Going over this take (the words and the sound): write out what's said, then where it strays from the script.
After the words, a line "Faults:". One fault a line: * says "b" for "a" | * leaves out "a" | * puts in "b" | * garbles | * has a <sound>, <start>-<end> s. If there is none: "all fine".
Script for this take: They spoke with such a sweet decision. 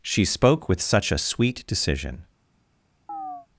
She spoke with such a sweet decision.
Faults:
* says "She" for "They"
* has a chirp, 3.1-3.5 s